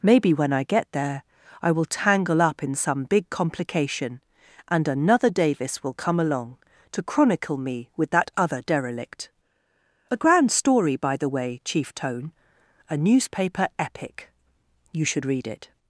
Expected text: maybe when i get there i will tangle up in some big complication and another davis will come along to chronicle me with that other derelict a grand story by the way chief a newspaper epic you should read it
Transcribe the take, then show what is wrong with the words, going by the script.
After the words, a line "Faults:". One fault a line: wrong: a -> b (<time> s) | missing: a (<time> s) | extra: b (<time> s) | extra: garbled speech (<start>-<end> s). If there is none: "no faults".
maybe when i get there i will tangle up in some big complication and another davis will come along to chronicle me with that other derelict a grand story by the way chief tone a newspaper epic you should read it
Faults:
extra: tone (11.9 s)